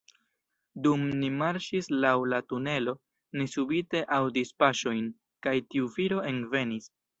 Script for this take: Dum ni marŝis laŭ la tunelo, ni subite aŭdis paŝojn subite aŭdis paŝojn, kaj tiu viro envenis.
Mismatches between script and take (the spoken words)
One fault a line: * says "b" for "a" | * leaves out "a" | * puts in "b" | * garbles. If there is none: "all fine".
* leaves out "subite aŭdis paŝojn"